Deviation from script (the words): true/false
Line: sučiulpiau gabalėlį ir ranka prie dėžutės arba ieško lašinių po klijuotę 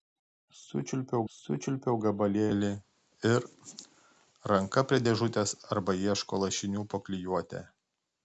true